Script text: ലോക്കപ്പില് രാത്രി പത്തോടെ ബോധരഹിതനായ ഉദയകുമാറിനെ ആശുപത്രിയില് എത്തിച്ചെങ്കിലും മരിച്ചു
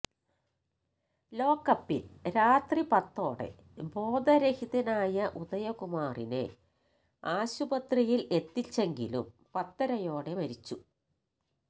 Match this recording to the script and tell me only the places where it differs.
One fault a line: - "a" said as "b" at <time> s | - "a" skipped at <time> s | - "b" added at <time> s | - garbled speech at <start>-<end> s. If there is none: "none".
- "പത്തരയോടെ" added at 9.5 s